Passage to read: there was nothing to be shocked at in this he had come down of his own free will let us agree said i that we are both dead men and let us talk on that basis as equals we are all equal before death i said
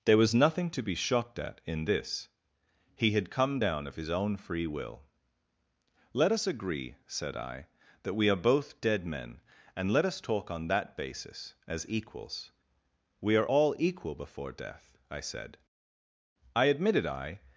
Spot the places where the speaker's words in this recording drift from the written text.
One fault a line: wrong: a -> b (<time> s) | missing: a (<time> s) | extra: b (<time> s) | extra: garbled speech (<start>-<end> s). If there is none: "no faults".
extra: i admitted i (16.5 s)